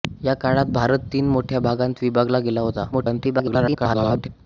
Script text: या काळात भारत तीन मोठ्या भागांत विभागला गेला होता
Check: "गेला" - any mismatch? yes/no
no